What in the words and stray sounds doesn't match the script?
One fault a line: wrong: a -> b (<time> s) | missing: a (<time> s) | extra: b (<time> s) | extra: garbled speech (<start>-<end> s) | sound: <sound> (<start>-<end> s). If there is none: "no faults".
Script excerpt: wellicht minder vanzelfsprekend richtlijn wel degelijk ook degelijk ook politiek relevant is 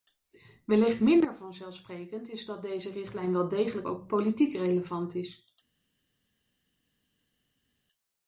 extra: is dat deze (2.3 s)
missing: degelijk ook (4.1 s)